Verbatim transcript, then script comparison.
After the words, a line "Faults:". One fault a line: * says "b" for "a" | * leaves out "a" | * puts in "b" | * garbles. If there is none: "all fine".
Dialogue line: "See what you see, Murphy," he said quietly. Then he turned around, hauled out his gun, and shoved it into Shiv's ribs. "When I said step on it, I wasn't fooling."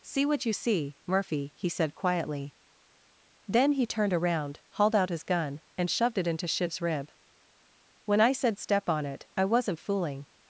"See what you see, Murphy," he said quietly. Then he turned around, hauled out his gun, and shoved it into Shiv's rib. "When I said step on it, I wasn't fooling."
Faults:
* says "rib" for "ribs"